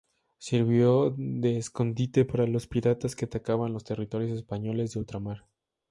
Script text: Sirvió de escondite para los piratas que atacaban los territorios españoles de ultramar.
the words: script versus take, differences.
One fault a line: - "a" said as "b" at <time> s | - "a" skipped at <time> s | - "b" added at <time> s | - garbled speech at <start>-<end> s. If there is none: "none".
none